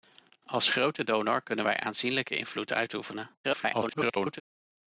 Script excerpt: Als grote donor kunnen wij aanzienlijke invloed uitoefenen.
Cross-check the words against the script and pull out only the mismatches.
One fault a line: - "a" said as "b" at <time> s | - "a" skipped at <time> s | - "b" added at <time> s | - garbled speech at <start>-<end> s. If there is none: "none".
- garbled speech at 3.4-4.4 s